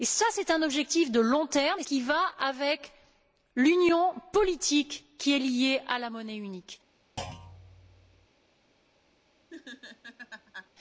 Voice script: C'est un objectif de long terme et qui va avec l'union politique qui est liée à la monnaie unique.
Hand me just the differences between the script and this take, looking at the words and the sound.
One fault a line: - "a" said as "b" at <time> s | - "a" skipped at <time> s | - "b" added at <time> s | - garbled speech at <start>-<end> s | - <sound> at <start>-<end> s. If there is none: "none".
- thud at 7.2-8.3 s
- laugh at 9.5-10.7 s